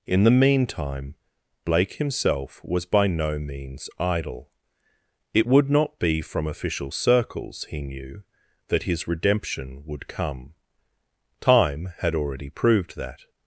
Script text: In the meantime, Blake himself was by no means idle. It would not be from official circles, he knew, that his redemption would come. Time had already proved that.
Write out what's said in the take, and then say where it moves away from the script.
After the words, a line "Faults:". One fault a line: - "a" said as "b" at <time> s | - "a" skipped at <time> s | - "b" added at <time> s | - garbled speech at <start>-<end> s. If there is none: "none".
In the meantime, Blake himself was by no means idle. It would not be from official circles, he knew, that his redemption would come. Time had already proved that.
Faults:
none